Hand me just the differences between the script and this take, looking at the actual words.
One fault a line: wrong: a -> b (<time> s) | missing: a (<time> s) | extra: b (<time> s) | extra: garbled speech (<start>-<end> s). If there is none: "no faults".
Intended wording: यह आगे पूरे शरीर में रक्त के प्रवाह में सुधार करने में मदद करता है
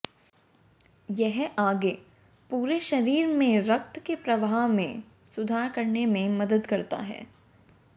no faults